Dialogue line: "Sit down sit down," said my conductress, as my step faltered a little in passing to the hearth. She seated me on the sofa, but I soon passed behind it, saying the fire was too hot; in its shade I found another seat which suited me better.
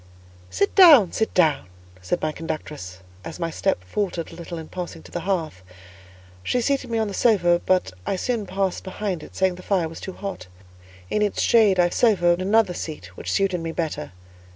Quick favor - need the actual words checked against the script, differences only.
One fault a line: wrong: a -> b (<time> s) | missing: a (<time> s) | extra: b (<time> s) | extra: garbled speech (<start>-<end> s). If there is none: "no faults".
wrong: found -> sofa (11.9 s)